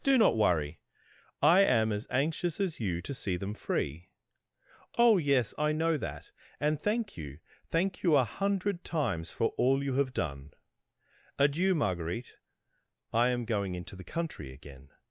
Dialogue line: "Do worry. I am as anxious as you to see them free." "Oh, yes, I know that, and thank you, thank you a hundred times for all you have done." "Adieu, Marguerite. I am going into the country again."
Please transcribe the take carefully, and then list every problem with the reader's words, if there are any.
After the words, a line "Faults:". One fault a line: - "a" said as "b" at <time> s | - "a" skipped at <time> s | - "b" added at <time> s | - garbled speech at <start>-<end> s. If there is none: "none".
"Do not worry. I am as anxious as you to see them free." "Oh, yes, I know that, and thank you, thank you a hundred times for all you have done." "Adieu, Marguerite. I am going into the country again."
Faults:
- "not" added at 0.2 s